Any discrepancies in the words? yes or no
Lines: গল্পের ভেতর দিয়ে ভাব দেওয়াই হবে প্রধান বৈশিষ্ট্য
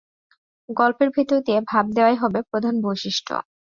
no